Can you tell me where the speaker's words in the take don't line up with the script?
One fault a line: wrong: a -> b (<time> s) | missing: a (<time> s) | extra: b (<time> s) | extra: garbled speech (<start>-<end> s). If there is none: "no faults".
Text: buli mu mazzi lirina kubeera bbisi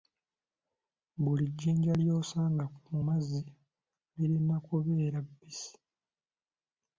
extra: jjinja ly'osanga (1.5 s)